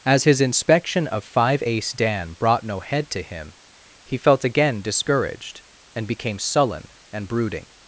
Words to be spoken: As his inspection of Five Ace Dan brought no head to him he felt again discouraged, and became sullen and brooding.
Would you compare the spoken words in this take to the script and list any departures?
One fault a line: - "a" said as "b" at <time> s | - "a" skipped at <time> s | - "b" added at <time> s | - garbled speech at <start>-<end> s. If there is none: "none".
none